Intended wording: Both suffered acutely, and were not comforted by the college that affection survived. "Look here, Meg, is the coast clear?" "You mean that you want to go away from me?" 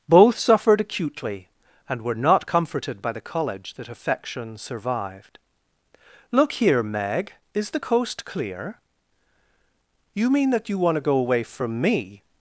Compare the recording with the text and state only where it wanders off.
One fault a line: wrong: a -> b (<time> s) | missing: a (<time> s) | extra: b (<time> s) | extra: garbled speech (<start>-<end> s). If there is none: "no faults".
no faults